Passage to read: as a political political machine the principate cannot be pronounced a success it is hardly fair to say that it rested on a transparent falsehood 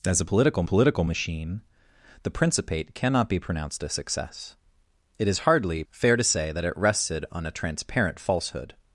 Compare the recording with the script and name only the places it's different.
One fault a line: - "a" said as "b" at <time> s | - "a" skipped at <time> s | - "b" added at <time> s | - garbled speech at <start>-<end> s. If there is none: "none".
none